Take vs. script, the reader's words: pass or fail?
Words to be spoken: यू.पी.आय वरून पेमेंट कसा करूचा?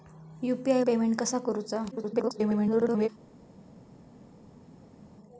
fail